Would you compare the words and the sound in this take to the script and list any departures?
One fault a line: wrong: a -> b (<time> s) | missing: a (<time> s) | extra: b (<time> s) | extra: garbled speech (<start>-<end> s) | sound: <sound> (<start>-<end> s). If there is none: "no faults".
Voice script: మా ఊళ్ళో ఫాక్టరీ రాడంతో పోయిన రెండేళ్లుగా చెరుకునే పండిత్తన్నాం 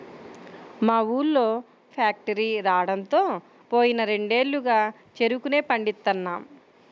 no faults